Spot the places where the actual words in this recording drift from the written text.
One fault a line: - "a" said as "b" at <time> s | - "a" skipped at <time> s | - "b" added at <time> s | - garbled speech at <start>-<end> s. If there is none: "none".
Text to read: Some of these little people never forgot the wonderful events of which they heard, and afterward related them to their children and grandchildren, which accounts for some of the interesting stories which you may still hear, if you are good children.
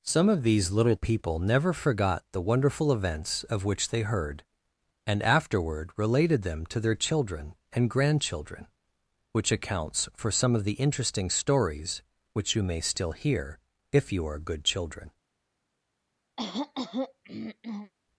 none